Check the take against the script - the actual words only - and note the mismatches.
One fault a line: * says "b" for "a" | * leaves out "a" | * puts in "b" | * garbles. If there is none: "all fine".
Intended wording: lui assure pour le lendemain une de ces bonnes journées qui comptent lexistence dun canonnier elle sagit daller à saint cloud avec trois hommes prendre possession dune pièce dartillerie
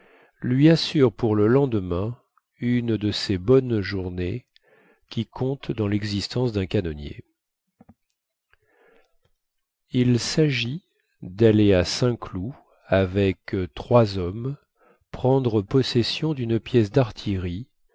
* puts in "dans"
* says "il" for "elle"